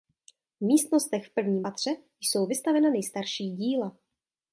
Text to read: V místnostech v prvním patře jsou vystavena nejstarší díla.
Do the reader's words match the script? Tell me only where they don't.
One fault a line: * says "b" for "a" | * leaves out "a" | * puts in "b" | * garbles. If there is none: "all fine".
all fine